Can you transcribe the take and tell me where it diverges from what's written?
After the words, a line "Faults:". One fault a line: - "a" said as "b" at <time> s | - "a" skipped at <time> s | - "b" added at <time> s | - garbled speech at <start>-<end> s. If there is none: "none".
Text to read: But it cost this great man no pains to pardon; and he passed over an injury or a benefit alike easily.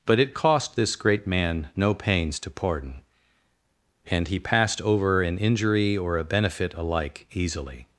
But it cost this great man no pains to pardon; and he passed over an injury or a benefit alike easily.
Faults:
none